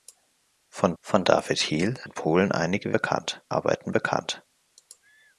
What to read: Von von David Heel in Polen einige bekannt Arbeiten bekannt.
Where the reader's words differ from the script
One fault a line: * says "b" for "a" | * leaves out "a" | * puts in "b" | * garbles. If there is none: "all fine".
all fine